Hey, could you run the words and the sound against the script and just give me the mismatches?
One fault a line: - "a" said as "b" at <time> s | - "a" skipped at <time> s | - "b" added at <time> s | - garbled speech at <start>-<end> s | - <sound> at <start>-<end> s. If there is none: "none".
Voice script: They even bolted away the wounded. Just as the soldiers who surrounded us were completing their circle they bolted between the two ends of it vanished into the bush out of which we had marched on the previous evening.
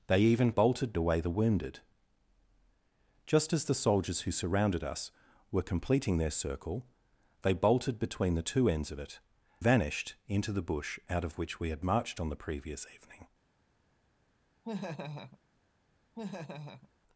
- laugh at 14.6-15.4 s
- laugh at 16.1-16.9 s